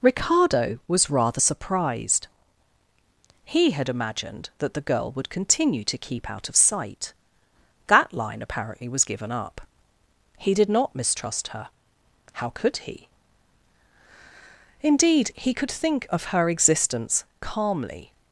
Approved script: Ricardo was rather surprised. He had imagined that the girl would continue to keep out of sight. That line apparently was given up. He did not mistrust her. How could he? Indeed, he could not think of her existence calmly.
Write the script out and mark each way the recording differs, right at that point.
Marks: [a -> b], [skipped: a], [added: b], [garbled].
Ricardo was rather surprised. He had imagined that the girl would continue to keep out of sight. That line apparently was given up. He did not mistrust her. How could he? Indeed, he could [skipped: not] think of her existence calmly.